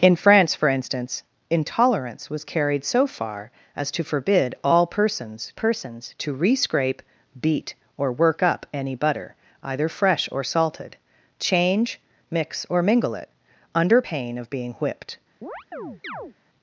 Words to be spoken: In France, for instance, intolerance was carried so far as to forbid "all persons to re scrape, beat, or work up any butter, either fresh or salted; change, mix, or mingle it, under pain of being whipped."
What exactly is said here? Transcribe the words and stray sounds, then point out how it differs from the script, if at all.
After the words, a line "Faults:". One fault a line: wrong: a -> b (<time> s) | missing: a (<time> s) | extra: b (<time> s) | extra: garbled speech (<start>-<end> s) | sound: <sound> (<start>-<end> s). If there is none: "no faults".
In France, for instance, intolerance was carried so far as to forbid "all persons persons to re scrape, beat, or work up any butter, either fresh or salted; change, mix, or mingle it, under pain of being whipped."
Faults:
extra: persons (5.5 s)
sound: chirp (15.4-16.4 s)